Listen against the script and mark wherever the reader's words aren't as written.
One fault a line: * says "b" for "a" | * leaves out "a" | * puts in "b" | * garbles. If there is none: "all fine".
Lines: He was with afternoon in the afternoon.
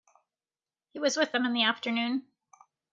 * says "them" for "afternoon"